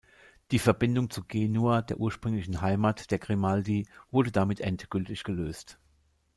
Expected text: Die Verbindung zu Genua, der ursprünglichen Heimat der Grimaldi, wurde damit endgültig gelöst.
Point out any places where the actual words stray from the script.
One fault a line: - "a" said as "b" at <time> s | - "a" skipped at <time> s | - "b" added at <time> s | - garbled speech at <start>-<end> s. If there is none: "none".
none